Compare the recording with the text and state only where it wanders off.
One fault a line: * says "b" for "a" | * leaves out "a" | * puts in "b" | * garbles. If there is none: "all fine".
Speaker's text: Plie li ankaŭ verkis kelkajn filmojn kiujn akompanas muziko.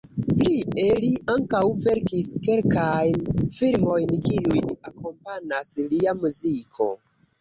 * puts in "lia"